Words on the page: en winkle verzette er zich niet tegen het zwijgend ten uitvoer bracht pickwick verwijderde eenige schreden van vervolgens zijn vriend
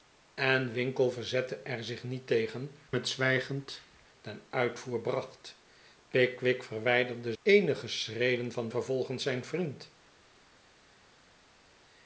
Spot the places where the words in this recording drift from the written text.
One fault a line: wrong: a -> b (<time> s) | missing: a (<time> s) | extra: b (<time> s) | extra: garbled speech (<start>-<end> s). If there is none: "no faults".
no faults